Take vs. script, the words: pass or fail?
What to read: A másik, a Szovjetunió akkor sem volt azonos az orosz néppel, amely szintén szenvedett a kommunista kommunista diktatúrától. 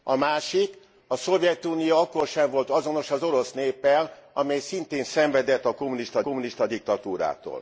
pass